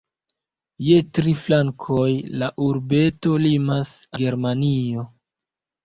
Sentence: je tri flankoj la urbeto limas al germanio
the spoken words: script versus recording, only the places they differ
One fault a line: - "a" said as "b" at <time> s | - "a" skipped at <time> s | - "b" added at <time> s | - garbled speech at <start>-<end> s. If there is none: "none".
- "al" skipped at 3.9 s